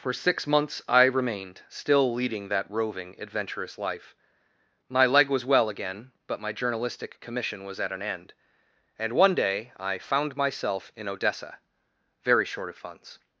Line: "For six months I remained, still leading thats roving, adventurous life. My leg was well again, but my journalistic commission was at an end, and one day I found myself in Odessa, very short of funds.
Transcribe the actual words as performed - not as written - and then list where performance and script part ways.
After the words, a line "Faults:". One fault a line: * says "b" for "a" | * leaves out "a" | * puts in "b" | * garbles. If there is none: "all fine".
"For six months I remained, still leading that roving, adventurous life. My leg was well again, but my journalistic commission was at an end, and one day I found myself in Odessa, very short of funds.
Faults:
* says "that" for "thats"